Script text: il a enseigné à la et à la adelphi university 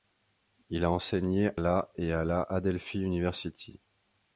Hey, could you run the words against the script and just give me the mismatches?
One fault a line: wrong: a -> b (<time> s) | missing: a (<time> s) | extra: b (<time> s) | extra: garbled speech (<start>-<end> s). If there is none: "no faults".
missing: à (1.5 s)